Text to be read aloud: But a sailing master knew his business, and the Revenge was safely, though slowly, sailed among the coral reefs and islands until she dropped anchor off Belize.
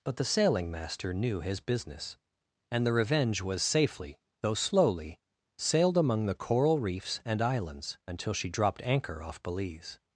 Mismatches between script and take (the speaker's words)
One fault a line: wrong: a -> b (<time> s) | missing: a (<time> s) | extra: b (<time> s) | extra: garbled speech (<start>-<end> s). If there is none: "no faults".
wrong: a -> the (0.1 s)